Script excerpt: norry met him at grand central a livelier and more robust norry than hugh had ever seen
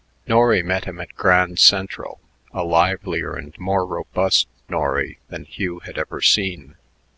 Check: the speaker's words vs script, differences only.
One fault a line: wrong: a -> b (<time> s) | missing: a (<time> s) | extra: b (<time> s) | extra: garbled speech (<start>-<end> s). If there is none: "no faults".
no faults